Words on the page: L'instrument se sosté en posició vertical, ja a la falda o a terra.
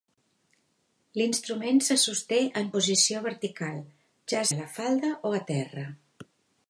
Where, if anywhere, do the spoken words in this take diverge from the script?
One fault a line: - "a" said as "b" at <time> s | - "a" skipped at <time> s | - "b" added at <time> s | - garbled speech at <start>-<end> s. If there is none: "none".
none